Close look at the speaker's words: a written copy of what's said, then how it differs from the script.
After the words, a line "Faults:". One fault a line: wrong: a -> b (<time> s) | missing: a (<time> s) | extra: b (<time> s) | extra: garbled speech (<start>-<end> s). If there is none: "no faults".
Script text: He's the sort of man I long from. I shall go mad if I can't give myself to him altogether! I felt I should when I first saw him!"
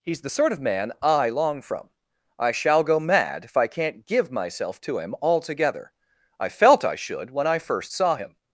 He's the sort of man I long from. I shall go mad if I can't give myself to him altogether! I felt I should when I first saw him!"
Faults:
no faults